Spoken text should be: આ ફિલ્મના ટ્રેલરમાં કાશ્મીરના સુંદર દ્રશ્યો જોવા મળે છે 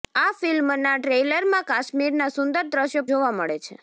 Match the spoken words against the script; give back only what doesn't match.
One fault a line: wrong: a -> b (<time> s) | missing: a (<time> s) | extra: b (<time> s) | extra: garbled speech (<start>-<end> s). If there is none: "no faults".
no faults